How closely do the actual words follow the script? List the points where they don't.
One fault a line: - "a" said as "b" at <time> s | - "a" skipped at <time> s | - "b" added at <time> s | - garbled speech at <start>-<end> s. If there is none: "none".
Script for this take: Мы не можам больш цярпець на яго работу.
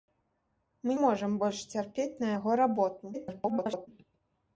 - "не" skipped at 0.9 s
- garbled speech at 3.1-3.9 s